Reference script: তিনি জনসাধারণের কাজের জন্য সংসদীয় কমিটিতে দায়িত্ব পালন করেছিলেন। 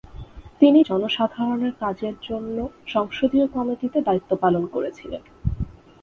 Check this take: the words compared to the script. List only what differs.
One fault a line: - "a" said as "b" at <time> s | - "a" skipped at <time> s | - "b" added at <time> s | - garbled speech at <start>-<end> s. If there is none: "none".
none